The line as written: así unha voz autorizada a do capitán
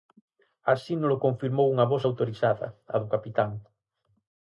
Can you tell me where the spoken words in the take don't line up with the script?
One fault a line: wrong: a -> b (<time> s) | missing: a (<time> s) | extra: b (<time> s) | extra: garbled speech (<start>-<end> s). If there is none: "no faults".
extra: nolo confirmou (1.0 s)